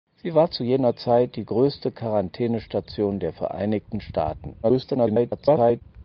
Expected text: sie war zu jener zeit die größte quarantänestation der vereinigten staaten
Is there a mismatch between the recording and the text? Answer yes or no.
yes